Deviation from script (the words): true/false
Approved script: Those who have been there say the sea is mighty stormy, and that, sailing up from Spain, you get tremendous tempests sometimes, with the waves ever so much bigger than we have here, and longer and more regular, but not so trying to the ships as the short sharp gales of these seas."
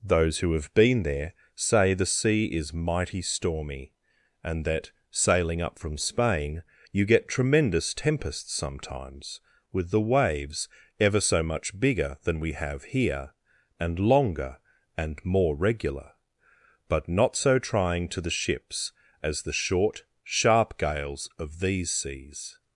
false